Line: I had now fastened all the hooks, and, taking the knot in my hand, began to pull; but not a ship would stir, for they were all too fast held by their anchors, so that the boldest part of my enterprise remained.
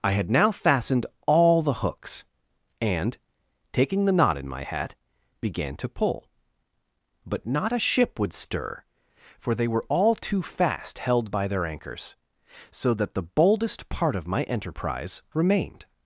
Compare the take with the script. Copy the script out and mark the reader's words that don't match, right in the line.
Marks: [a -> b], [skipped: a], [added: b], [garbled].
I had now fastened all the hooks, and, taking the knot in my [hand, -> hat] began to pull; but not a ship would stir, for they were all too fast held by their anchors, so that the boldest part of my enterprise remained.